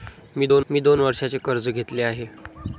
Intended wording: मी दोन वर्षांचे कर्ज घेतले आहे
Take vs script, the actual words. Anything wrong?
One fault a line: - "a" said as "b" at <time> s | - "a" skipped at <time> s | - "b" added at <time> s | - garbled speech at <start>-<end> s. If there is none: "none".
- "मी दोन" added at 0.7 s